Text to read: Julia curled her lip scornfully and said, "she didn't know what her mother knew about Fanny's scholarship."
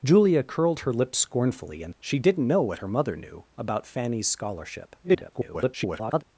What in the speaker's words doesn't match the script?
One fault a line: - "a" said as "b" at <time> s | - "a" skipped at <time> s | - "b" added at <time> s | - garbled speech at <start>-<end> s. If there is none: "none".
- "said" skipped at 1.9 s
- garbled speech at 5.0-6.2 s